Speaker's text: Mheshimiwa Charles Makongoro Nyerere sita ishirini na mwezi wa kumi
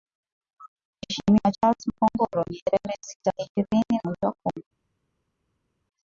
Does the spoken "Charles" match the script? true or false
true